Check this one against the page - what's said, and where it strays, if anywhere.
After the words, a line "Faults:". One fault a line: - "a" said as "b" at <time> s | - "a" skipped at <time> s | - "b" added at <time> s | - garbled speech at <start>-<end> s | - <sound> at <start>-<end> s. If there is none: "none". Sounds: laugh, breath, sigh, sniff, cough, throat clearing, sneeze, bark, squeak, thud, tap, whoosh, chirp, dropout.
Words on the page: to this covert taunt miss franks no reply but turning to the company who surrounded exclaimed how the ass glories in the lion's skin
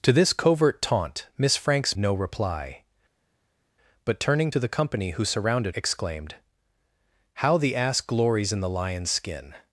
to this covert taunt miss franks no reply but turning to the company who surrounded exclaimed how the ass glories in the lion's skin
Faults:
none